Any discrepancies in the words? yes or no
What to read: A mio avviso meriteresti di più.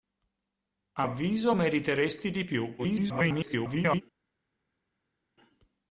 yes